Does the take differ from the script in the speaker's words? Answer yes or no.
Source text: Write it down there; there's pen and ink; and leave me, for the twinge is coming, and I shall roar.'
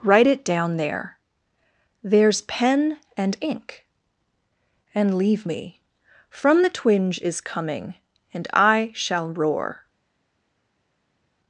yes